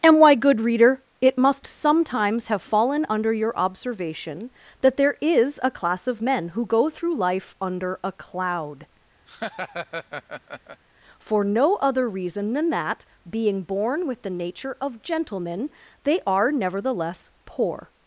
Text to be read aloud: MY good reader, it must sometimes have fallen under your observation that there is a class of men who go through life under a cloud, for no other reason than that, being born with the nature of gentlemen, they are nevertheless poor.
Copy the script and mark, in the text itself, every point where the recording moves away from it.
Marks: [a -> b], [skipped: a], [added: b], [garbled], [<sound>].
[MY -> And why] good reader, it must sometimes have fallen under your observation that there is a class of men who go through life under a cloud, [laugh] for no other reason than that, being born with the nature of gentlemen, they are nevertheless poor.